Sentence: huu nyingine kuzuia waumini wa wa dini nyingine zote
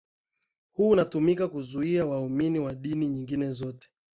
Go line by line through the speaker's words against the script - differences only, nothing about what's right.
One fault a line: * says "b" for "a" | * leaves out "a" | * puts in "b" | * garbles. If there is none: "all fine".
* says "unatumika" for "nyingine"
* leaves out "wa"